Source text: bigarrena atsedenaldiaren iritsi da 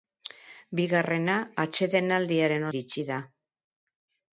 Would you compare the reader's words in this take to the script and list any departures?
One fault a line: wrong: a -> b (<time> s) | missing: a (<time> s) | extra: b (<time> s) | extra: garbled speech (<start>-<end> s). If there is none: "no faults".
no faults